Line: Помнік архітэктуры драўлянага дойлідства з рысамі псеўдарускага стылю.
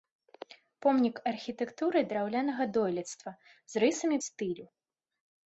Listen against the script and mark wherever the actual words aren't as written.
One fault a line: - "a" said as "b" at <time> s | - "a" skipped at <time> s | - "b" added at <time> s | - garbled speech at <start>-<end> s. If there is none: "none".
- "псеўдарускага" skipped at 4.2 s